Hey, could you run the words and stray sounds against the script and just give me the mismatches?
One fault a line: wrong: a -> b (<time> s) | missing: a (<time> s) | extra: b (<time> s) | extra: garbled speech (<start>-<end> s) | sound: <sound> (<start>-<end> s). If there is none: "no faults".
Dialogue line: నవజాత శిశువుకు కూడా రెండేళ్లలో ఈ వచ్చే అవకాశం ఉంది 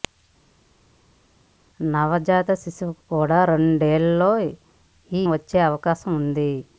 no faults